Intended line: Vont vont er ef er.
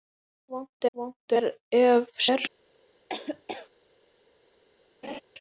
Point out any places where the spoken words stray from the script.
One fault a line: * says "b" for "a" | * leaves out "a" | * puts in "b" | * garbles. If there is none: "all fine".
all fine